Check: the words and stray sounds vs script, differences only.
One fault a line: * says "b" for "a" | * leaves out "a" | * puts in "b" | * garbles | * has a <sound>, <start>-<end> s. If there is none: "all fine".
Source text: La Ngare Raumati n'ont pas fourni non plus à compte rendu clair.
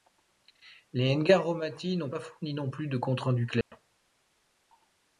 * says "Les" for "La"
* says "de" for "à"
* has a dropout, 3.6-3.7 s